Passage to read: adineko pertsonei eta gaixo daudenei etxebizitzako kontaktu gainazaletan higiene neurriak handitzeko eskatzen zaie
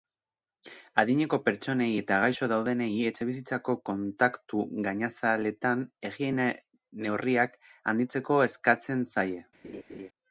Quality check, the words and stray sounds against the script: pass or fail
fail